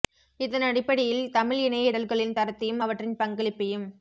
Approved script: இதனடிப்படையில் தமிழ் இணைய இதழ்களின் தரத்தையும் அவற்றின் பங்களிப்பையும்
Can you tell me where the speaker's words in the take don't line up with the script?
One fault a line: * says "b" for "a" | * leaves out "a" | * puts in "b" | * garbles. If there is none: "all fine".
all fine